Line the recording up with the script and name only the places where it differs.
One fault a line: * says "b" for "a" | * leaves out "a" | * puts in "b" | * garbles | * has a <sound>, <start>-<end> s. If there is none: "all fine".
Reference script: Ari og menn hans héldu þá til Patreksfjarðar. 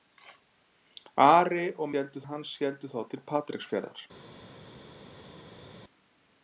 * says "héldu" for "menn"